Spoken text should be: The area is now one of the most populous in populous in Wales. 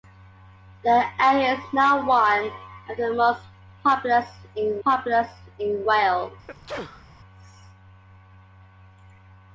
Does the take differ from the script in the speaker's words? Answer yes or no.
no